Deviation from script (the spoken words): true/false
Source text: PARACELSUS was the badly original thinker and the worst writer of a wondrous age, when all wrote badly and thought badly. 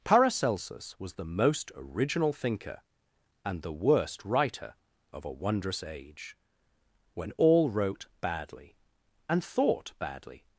true